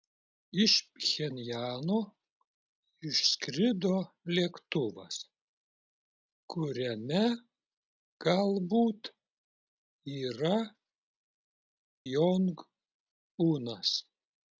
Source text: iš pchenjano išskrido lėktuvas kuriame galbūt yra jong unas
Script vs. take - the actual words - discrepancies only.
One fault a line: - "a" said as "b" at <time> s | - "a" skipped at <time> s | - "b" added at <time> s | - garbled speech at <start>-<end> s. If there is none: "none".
none